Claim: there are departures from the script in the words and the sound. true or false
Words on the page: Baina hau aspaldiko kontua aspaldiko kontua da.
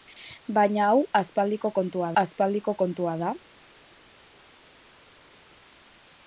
false